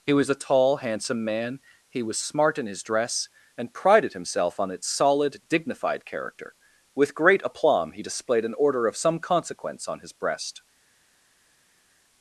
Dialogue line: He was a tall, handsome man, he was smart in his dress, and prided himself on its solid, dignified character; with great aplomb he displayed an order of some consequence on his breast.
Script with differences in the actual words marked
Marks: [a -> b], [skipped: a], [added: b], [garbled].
He was a tall, handsome man, he was smart in his dress, and prided himself on its solid, dignified character; with great aplomb he displayed an order of some consequence on his breast.